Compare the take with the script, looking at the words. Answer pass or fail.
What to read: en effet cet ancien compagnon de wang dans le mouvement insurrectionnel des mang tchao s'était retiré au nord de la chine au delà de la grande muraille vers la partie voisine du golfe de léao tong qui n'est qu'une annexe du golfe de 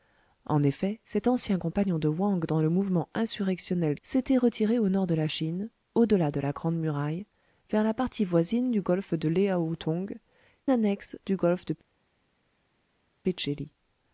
fail